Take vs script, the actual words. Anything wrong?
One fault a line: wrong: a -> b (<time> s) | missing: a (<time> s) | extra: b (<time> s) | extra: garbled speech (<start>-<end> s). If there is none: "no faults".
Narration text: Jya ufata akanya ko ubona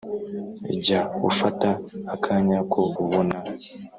no faults